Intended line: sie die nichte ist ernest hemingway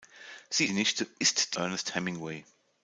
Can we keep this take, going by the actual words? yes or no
yes